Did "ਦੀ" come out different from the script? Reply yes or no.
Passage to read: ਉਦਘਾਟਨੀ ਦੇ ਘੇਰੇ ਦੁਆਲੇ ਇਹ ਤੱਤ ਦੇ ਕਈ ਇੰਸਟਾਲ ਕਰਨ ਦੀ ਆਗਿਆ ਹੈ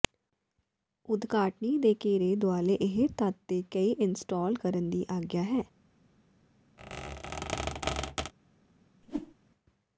no